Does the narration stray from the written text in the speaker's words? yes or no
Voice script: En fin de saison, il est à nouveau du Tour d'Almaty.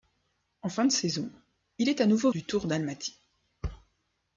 no